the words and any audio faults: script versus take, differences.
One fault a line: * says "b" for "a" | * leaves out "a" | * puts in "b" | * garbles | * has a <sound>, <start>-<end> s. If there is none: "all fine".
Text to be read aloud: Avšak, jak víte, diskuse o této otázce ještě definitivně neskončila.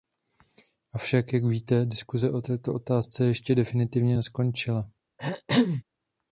* has a throat clearing, 5.2-5.8 s